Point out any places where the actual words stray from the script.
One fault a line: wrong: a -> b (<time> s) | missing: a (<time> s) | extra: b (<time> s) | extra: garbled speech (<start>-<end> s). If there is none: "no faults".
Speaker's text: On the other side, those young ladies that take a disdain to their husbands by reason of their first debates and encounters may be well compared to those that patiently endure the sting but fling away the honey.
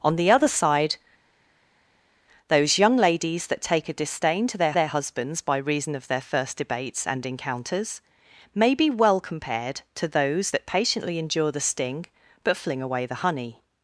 extra: their (4.7 s)